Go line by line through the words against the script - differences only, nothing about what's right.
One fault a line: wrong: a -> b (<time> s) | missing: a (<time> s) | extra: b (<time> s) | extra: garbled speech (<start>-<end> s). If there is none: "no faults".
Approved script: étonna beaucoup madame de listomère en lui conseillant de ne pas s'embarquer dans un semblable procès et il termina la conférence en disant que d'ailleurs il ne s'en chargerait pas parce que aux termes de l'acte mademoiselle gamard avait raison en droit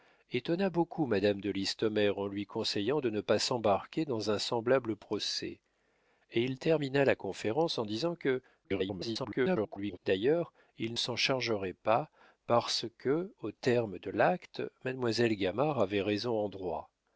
extra: garbled speech (8.6-10.0 s)
missing: ne (10.9 s)